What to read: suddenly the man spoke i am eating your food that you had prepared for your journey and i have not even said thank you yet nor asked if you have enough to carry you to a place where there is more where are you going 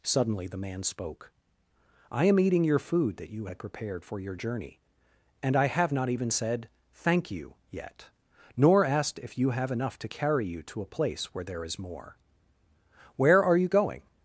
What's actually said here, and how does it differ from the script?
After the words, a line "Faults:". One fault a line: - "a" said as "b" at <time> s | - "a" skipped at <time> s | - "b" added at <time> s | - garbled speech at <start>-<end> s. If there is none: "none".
suddenly the man spoke i am eating your food that you had prepared for your journey and i have not even said thank you yet nor asked if you have enough to carry you to a place where there is more where are you going
Faults:
none